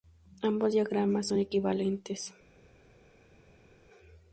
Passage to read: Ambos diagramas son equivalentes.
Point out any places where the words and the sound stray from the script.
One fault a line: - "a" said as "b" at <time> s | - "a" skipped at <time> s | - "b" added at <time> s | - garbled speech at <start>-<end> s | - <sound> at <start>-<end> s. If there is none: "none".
none